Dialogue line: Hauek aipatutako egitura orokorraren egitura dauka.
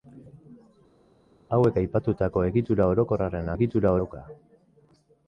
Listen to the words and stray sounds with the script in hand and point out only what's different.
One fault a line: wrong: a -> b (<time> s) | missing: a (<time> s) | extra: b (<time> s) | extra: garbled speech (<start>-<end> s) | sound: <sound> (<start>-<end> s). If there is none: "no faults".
no faults